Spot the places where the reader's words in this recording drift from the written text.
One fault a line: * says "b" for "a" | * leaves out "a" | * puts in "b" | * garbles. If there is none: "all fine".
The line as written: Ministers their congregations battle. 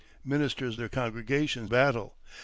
all fine